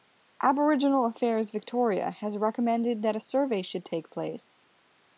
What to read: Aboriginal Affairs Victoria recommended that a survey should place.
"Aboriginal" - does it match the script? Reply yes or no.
yes